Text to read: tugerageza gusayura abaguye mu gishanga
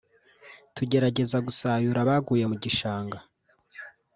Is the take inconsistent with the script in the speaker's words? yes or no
no